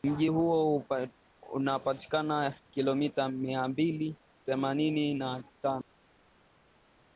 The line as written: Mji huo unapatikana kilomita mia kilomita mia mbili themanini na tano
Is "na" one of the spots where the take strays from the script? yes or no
no